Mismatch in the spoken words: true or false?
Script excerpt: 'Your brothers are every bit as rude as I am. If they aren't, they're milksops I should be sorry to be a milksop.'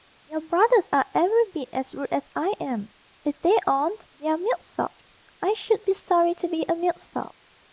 false